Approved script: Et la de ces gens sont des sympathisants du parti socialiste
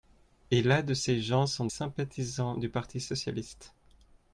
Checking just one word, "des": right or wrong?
wrong